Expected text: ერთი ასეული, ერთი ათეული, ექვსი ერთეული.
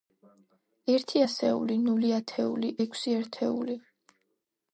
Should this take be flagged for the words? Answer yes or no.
yes